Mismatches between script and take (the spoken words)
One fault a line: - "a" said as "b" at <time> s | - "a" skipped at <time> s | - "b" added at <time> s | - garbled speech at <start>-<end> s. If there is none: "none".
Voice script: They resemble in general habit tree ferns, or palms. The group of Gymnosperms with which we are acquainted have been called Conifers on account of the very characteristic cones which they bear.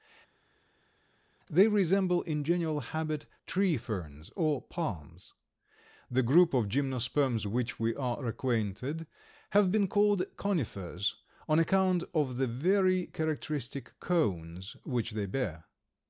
- "with" skipped at 7.5 s